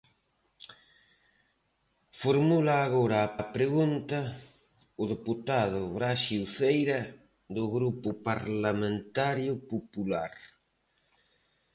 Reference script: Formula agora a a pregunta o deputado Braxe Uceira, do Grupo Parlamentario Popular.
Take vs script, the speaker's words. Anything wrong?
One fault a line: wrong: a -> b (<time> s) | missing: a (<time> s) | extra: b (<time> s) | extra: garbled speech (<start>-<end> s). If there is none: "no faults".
no faults